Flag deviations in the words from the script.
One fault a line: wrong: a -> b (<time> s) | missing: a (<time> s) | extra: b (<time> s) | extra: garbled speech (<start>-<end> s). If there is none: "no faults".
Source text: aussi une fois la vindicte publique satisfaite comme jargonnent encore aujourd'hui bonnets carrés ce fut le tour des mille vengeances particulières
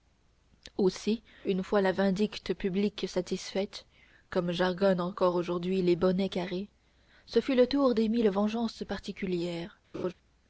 extra: les (5.8 s)